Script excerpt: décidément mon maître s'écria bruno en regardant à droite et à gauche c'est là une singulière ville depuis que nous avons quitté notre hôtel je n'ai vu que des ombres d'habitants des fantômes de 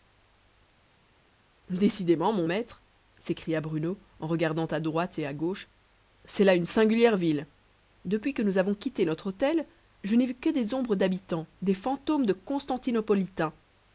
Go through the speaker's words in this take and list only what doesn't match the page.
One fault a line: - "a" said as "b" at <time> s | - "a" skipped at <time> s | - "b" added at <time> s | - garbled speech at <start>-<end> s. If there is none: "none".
none